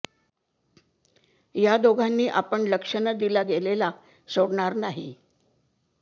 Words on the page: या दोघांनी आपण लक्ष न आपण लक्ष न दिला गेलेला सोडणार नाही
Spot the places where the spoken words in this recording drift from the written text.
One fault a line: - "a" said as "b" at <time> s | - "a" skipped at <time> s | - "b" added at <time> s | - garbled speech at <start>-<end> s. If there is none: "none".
- "आपण लक्ष न" skipped at 3.1 s